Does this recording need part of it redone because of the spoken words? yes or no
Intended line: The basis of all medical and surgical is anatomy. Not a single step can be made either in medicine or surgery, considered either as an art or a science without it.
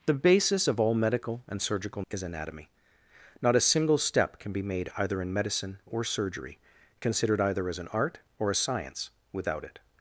no